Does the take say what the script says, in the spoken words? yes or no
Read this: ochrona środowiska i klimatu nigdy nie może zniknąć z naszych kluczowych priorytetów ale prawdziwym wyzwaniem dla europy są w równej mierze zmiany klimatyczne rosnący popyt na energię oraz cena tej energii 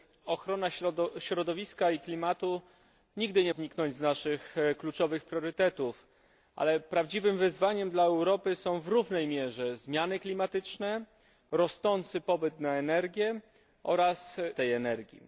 no